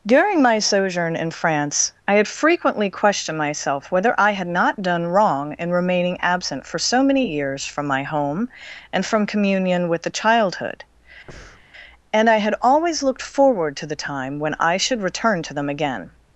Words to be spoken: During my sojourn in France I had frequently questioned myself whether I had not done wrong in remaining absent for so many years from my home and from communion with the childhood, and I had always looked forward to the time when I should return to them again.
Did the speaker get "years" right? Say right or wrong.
right